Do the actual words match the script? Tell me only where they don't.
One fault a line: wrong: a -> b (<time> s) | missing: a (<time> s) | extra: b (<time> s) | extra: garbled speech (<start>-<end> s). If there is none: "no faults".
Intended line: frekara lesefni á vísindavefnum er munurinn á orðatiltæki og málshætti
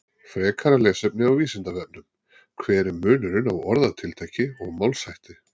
extra: hver (2.6 s)